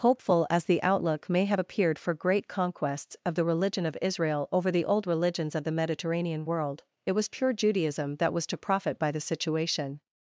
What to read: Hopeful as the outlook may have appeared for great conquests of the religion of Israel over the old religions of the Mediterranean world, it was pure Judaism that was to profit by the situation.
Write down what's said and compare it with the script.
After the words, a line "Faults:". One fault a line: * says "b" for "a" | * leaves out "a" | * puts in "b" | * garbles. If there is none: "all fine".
Hopeful as the outlook may have appeared for great conquests of the religion of Israel over the old religions of the Mediterranean world, it was pure Judaism that was to profit by the situation.
Faults:
all fine